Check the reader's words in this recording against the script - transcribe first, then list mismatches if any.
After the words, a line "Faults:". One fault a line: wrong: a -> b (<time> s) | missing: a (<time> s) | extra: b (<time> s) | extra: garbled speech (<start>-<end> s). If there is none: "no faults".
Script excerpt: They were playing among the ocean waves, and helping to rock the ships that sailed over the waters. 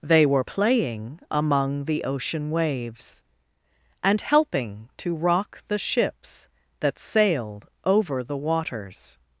They were playing among the ocean waves, and helping to rock the ships that sailed over the waters.
Faults:
no faults